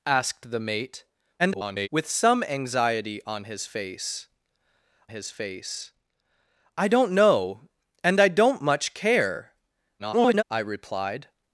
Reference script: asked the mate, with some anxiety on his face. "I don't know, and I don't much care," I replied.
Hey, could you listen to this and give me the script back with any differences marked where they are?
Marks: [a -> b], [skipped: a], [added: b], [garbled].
asked the mate, [garbled] with some anxiety on his face. [added: his face] "I don't know, and I don't much care," [garbled] I replied.